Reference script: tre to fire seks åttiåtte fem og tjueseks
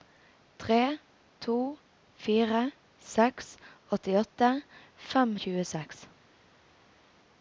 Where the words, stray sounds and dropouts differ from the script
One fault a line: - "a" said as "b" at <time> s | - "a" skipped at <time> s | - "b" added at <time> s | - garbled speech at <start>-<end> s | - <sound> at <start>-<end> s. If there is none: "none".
none